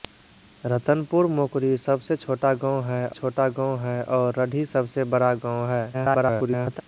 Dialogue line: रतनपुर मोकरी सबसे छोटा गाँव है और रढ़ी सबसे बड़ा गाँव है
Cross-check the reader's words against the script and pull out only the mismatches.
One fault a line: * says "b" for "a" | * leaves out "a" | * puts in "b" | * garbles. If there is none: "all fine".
* puts in "छोटा गाँव है"
* garbles